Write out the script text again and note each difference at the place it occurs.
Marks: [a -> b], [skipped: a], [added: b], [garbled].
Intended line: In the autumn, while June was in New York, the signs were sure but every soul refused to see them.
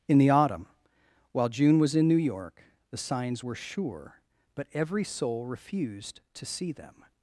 In the autumn, while June was in New York, the signs were sure but every soul refused to see them.